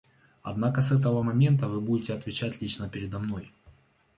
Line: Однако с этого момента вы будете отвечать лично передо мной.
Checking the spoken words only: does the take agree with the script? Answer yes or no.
yes